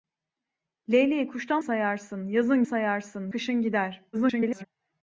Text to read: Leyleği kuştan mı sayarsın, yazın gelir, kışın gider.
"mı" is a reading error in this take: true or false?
true